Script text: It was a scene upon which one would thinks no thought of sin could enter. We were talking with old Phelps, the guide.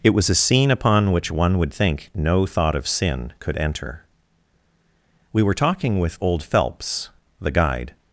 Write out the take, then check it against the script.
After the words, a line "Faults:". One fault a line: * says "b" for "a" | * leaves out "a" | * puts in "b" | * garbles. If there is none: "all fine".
It was a scene upon which one would think no thought of sin could enter. We were talking with old Phelps, the guide.
Faults:
* says "think" for "thinks"